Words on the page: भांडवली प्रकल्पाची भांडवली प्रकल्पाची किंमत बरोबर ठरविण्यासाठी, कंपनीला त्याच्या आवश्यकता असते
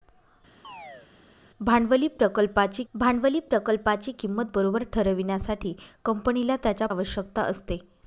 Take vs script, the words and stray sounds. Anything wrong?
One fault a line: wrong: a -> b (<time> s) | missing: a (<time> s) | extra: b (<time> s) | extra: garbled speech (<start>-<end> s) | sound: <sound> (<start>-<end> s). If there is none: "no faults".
sound: chirp (0.6-1.1 s)